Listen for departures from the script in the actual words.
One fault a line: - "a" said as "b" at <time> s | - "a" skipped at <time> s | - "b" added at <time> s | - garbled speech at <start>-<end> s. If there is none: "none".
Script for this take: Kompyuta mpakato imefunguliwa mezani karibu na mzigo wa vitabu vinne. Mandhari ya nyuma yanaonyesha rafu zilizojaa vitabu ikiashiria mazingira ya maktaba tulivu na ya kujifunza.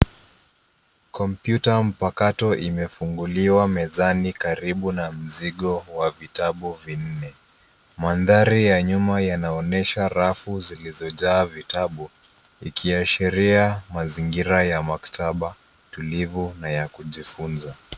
none